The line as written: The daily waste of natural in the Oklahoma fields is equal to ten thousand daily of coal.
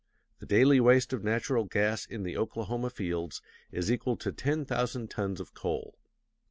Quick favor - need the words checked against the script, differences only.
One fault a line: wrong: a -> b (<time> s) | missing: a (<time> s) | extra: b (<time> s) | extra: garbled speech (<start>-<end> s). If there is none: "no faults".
extra: gas (1.6 s)
wrong: daily -> tons (5.1 s)